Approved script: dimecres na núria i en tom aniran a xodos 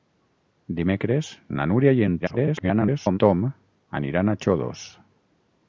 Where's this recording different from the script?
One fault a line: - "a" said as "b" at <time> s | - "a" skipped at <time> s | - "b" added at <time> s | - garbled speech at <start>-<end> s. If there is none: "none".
- garbled speech at 2.2-3.2 s